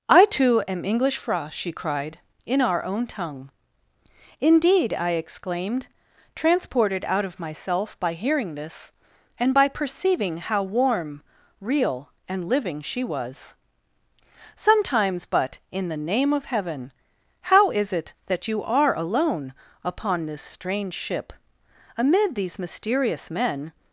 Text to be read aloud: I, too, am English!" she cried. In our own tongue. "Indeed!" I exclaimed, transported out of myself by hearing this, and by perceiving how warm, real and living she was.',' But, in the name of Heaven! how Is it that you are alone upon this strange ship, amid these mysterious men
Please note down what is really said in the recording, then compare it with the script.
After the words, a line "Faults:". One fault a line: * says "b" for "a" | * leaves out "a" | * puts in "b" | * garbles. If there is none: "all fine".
I, too, am English!" fra she cried. In our own tongue. "Indeed!" I exclaimed, transported out of myself by hearing this, and by perceiving how warm, real and living she was.',' sometimes But, in the name of Heaven! how Is it that you are alone upon this strange ship, amid these mysterious men
Faults:
* puts in "fra"
* puts in "sometimes"